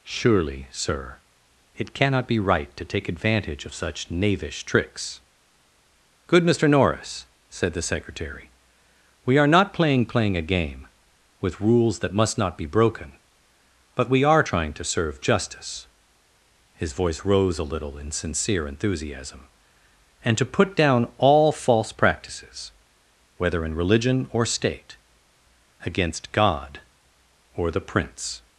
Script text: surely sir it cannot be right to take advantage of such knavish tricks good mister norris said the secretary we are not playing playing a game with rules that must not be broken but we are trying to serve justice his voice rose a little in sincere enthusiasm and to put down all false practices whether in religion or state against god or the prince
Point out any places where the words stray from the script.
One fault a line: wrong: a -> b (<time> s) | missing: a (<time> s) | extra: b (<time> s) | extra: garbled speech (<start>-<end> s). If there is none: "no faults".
no faults